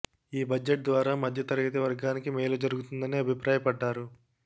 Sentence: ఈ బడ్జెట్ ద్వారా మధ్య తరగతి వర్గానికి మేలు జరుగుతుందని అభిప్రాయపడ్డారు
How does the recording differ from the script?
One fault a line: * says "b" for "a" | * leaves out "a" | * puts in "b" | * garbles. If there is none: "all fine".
all fine